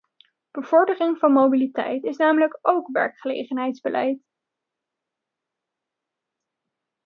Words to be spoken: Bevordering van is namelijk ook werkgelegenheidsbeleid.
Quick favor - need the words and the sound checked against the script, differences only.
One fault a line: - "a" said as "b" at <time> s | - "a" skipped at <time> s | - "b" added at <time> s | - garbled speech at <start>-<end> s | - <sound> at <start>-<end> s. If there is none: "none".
- "mobiliteit" added at 1.3 s